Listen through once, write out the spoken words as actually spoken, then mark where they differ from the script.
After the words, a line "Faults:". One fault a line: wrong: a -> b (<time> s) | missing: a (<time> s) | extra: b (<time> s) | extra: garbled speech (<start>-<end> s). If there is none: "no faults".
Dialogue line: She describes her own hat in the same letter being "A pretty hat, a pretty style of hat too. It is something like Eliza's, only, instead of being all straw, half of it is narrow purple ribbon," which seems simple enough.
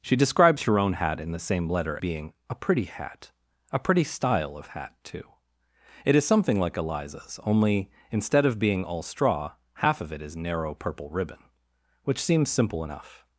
She describes her own hat in the same letter being "A pretty hat, a pretty style of hat too. It is something like Eliza's, only, instead of being all straw, half of it is narrow purple ribbon," which seems simple enough.
Faults:
no faults